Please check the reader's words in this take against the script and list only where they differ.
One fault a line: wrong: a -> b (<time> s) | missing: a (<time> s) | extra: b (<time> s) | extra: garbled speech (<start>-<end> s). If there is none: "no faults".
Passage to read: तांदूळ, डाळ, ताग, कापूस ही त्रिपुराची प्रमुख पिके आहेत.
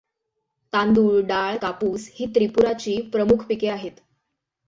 missing: ताग (1.6 s)